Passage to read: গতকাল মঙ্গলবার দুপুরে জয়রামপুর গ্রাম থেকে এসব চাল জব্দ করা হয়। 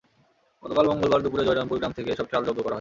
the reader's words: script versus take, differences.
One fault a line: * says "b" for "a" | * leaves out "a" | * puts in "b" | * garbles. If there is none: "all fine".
all fine